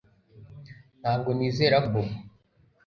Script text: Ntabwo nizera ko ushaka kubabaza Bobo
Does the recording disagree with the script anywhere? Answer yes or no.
yes